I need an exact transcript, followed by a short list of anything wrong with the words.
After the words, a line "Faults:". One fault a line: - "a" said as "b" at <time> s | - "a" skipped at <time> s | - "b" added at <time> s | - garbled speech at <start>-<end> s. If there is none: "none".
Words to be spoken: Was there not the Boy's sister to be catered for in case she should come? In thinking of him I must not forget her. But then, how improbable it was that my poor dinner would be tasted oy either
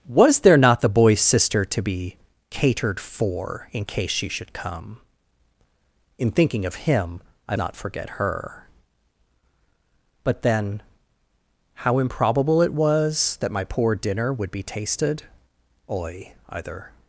Was there not the Boy's sister to be catered for in case she should come? In thinking of him I not forget her. But then, how improbable it was that my poor dinner would be tasted oy either
Faults:
- "must" skipped at 7.5 s